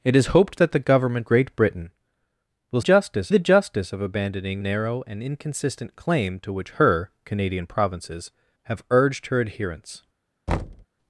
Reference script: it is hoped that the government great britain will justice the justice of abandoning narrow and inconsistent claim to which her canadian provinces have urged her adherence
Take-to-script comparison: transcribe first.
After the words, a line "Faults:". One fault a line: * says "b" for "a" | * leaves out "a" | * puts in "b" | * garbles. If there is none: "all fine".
it is hoped that the government great britain will justice the justice of abandoning narrow and inconsistent claim to which her canadian provinces have urged her adherence
Faults:
all fine